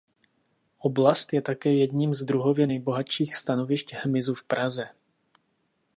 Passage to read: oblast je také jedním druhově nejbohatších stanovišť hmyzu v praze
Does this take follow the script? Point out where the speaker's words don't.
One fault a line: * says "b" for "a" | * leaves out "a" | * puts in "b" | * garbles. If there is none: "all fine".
* puts in "z"